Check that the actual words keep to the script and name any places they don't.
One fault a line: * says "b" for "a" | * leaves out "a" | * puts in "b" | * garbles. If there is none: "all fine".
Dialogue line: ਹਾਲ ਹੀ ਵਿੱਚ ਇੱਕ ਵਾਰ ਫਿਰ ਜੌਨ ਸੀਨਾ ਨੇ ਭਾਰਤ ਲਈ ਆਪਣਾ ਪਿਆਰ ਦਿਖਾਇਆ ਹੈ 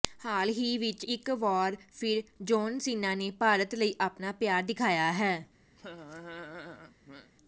all fine